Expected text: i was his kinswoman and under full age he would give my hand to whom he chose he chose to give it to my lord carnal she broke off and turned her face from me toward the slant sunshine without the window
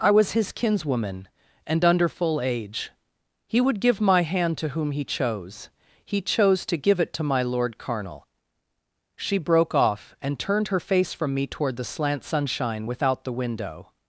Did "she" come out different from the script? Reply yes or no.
no